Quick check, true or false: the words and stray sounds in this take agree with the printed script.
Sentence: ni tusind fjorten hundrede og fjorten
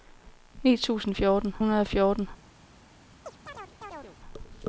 false